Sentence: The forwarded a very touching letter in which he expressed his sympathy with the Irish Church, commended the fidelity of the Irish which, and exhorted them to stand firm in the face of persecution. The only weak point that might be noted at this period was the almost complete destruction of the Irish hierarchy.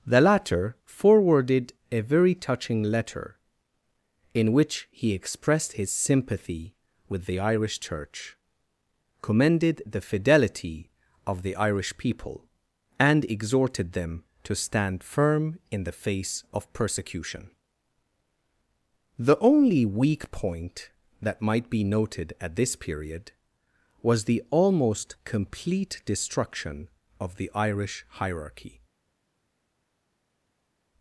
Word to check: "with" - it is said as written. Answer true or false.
true